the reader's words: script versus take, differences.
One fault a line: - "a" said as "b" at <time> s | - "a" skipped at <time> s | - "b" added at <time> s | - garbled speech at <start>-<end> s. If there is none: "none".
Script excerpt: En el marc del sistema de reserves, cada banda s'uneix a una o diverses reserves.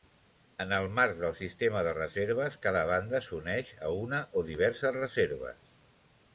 none